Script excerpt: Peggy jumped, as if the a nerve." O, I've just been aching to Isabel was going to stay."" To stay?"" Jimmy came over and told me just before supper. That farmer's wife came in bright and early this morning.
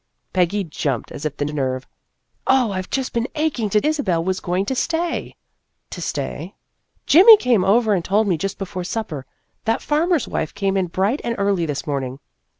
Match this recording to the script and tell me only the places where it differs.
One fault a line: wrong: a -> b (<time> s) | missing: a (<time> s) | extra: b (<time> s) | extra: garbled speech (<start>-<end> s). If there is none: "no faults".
no faults